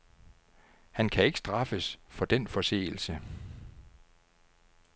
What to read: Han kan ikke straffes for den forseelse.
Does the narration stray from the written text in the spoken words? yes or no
no